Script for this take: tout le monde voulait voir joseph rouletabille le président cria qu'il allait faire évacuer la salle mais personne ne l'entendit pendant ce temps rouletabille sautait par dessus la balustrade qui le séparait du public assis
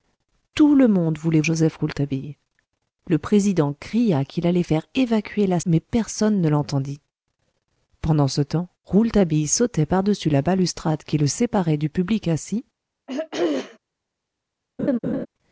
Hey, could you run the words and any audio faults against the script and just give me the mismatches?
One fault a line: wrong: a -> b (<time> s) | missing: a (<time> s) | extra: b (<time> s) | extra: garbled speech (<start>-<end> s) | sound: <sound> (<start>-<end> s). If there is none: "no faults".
missing: voir (1.4 s)
missing: salle (5.6 s)
sound: throat clearing (13.1-13.8 s)
sound: laugh (14.8-15.3 s)